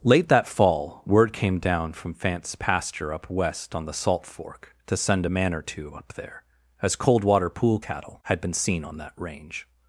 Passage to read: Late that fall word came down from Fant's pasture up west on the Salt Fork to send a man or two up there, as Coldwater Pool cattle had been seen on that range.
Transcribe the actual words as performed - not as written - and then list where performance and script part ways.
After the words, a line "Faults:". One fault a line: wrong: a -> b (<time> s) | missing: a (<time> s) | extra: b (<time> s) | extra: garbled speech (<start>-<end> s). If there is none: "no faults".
Late that fall word came down from Fant's pasture up west on the Salt Fork to send a man or two up there, as Coldwater Pool cattle had been seen on that range.
Faults:
no faults